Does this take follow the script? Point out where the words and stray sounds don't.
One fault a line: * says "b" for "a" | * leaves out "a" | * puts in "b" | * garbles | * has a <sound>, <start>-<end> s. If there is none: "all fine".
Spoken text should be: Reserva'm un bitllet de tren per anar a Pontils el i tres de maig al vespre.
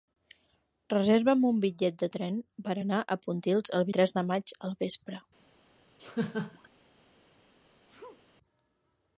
* has a laugh, 6.0-6.7 s
* has a sneeze, 7.9-8.2 s